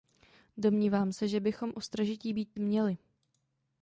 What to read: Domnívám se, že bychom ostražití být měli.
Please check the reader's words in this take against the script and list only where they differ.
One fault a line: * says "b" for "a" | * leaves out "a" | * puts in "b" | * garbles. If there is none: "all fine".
all fine